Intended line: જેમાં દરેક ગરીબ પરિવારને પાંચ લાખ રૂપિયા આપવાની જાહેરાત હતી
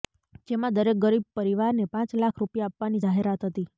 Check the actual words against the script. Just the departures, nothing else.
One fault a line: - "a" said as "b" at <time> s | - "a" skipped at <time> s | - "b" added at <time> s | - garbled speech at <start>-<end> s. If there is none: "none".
none